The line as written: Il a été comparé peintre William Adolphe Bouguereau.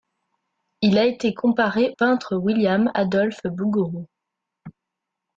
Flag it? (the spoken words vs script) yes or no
no